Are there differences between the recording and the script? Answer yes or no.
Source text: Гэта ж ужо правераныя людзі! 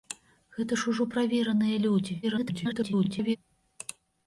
yes